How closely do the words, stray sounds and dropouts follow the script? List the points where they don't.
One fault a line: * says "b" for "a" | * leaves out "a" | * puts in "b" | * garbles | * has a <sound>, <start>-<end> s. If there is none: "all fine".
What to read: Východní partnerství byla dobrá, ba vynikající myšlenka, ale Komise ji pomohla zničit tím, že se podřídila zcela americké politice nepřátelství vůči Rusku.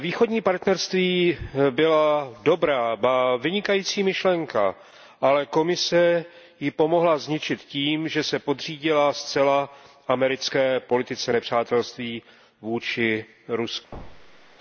* has a thud, 13.9-14.6 s